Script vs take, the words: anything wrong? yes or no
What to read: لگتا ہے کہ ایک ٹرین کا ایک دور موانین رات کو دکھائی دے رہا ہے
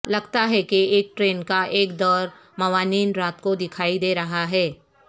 no